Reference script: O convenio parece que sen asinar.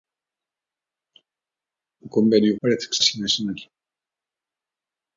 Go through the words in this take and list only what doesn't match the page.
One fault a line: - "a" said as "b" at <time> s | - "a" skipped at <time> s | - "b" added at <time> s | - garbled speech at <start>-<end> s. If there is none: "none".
none